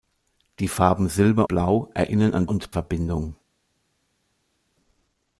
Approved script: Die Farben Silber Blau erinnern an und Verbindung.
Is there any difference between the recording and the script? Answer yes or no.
no